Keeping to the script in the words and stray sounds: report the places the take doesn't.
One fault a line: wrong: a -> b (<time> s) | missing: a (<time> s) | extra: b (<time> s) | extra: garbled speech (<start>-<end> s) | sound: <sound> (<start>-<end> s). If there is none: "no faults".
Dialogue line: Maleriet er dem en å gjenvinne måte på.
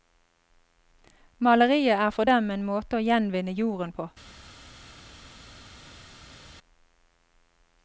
extra: for (2.1 s)
extra: måte (2.7 s)
wrong: måte -> jorden (3.6 s)